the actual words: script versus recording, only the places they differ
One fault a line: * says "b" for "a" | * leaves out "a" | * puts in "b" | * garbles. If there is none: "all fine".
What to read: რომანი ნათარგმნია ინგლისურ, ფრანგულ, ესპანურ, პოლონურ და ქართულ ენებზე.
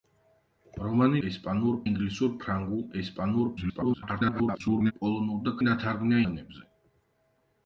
* says "ესპანურ" for "ნათარგმნია"
* garbles
* says "ნათარგმნია" for "ქართულ"